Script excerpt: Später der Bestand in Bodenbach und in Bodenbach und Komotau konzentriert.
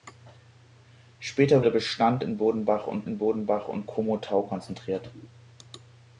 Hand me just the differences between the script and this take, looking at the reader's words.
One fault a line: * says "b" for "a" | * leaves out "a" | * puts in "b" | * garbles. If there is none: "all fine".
all fine